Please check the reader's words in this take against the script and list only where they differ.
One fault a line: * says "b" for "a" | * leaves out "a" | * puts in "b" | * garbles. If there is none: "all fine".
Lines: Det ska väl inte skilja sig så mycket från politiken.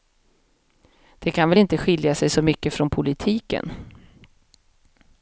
* says "kan" for "ska"